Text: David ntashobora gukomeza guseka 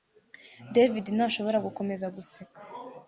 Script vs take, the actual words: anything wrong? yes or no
no